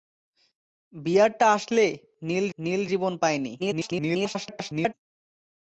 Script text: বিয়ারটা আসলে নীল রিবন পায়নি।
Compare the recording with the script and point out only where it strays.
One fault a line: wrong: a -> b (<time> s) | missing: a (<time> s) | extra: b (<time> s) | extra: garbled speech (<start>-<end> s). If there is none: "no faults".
extra: নীল (2.6 s)
extra: garbled speech (3.6-4.9 s)